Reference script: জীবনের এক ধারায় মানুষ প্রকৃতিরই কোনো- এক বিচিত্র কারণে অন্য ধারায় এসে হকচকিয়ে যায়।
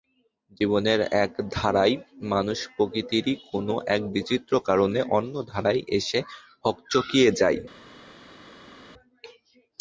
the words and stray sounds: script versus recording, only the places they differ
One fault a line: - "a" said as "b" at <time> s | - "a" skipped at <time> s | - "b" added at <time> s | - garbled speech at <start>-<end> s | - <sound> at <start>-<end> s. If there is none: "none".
none